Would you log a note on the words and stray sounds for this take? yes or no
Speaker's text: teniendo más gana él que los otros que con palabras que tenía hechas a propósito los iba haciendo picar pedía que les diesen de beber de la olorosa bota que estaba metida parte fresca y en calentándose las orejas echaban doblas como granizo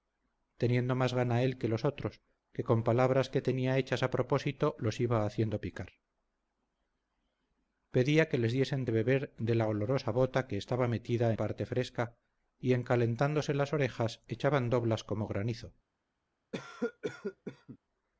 yes